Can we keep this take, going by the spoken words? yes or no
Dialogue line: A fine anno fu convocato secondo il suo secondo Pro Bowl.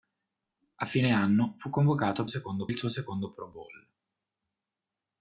yes